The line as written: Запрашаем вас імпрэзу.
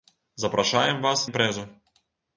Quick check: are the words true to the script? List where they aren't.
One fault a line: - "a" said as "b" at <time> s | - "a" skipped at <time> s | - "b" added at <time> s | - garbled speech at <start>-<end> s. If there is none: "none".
none